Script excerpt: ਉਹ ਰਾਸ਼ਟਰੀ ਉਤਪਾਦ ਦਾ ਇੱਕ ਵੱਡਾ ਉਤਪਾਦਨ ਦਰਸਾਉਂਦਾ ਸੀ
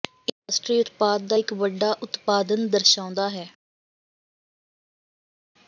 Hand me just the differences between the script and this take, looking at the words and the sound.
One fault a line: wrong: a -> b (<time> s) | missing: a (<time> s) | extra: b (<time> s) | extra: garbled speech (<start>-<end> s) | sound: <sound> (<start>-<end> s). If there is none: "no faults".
wrong: ਉਹ -> ਇਹ (0.0 s)
wrong: ਸੀ -> ਹੈ (3.3 s)